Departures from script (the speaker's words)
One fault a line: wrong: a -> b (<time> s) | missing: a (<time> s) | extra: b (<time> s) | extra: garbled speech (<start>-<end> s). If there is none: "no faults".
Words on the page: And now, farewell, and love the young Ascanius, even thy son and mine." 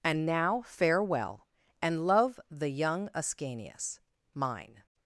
missing: even thy son and (4.0 s)